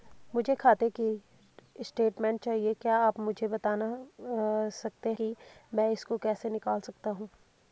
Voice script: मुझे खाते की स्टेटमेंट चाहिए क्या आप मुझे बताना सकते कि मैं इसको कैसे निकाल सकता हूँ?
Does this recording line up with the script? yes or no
yes